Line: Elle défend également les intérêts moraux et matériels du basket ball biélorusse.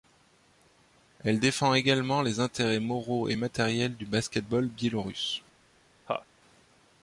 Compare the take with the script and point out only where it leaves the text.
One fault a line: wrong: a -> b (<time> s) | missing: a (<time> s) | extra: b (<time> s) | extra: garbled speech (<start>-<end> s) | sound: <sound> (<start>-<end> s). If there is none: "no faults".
sound: laugh (6.1-6.3 s)